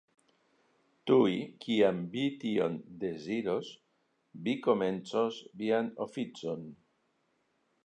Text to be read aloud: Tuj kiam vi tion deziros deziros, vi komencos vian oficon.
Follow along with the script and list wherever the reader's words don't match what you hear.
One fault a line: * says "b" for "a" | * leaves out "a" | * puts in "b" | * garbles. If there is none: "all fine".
* leaves out "deziros"